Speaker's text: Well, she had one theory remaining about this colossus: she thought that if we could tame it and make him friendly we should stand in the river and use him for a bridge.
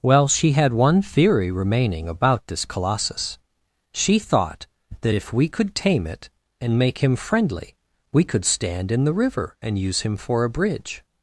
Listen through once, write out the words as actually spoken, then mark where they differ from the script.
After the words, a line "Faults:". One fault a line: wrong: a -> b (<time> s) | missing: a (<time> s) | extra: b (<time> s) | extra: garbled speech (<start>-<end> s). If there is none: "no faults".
Well, she had one theory remaining about this colossus: she thought that if we could tame it and make him friendly we could stand in the river and use him for a bridge.
Faults:
wrong: should -> could (8.2 s)